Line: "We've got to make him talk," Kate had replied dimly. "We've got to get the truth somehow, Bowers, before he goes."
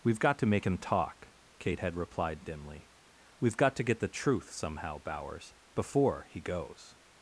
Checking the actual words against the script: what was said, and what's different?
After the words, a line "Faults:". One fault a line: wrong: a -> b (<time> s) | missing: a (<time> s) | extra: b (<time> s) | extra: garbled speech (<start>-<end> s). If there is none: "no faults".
"We've got to make him talk," Kate had replied dimly. "We've got to get the truth somehow, Bowers, before he goes."
Faults:
no faults